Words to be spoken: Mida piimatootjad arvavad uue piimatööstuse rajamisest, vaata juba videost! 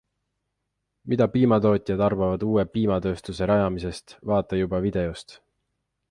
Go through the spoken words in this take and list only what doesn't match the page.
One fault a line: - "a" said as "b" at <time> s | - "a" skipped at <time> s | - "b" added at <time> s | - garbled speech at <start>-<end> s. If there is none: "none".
none